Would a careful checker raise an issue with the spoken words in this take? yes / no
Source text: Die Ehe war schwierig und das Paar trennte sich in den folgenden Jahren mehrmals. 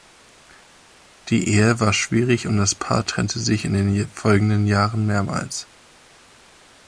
no